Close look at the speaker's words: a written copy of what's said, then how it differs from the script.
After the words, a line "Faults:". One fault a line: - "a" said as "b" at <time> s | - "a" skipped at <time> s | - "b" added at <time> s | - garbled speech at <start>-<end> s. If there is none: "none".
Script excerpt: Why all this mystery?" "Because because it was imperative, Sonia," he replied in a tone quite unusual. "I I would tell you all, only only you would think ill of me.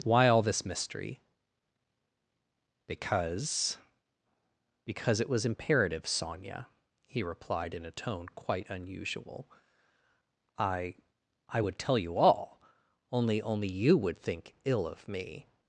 Why all this mystery?" "Because because it was imperative, Sonia," he replied in a tone quite unusual. "I I would tell you all, only only you would think ill of me.
Faults:
none